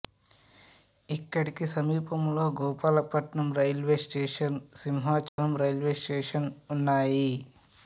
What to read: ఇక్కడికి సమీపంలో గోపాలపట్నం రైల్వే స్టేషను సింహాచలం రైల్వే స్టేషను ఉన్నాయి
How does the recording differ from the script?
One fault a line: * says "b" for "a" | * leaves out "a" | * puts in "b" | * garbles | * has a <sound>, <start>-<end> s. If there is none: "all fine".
* has a dropout, 5.3-5.4 s